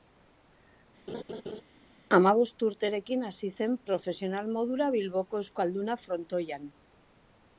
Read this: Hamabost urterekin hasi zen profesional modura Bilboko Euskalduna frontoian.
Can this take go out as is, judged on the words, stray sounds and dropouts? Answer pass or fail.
fail